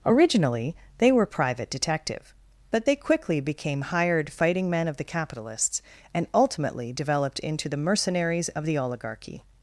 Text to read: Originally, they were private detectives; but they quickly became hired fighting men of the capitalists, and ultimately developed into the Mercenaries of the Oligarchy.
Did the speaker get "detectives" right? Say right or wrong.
wrong